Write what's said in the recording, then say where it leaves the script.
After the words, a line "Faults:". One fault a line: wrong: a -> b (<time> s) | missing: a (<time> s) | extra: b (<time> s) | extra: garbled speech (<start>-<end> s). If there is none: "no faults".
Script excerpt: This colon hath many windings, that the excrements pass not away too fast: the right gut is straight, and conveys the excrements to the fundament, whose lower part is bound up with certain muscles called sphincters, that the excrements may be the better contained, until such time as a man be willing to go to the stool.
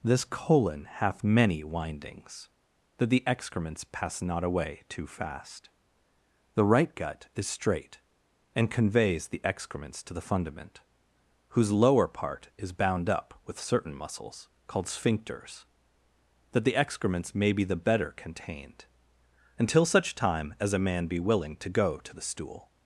This colon hath many windings, that the excrements pass not away too fast: the right gut is straight, and conveys the excrements to the fundament, whose lower part is bound up with certain muscles called sphincters, that the excrements may be the better contained, until such time as a man be willing to go to the stool.
Faults:
no faults